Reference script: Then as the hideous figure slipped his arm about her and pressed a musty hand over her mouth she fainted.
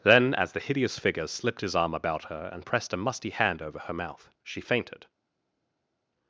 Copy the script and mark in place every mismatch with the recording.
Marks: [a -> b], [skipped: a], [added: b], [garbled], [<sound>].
Then as the hideous figure slipped his arm about her and pressed a musty hand over her mouth she fainted.